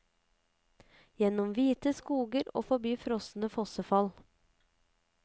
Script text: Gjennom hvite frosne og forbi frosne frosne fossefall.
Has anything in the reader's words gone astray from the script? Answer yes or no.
yes